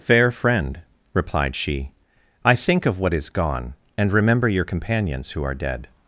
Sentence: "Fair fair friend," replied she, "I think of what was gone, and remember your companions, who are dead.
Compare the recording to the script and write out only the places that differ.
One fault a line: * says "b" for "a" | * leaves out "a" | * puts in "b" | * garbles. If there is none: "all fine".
* leaves out "fair"
* says "is" for "was"